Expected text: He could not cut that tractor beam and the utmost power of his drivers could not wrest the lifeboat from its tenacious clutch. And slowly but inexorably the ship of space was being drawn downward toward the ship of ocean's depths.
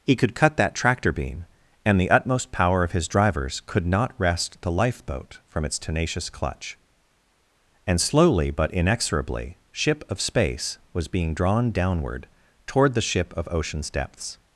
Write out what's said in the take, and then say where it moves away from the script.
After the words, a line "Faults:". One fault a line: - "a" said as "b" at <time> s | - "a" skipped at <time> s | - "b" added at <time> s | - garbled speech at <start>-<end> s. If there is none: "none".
He could cut that tractor beam and the utmost power of his drivers could not wrest the lifeboat from its tenacious clutch. And slowly but inexorably ship of space was being drawn downward toward the ship of ocean's depths.
Faults:
- "not" skipped at 0.3 s
- "the" skipped at 9.6 s